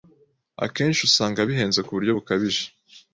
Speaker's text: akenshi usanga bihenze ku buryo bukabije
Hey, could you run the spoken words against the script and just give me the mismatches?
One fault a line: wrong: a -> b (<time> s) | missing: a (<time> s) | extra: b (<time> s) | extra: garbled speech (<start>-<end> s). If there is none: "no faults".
no faults